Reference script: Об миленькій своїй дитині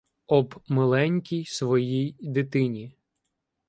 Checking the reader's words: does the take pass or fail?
pass